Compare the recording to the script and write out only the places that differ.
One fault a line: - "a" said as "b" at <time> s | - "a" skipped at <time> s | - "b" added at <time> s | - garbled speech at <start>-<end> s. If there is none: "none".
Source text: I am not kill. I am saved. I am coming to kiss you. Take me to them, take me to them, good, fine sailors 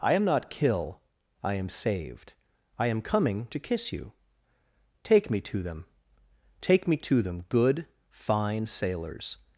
none